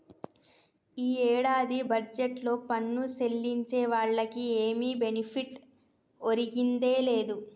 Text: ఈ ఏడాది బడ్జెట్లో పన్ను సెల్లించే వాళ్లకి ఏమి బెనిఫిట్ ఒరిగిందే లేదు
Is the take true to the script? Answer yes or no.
yes